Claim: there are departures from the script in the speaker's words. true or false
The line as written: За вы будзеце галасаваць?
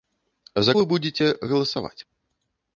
false